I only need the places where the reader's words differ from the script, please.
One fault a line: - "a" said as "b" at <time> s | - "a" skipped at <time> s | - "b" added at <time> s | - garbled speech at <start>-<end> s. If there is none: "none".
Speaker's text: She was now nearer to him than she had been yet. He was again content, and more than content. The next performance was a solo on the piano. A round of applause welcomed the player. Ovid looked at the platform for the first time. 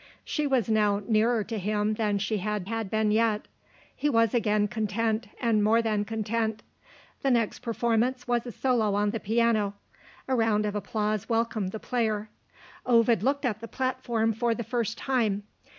- "had" added at 2.6 s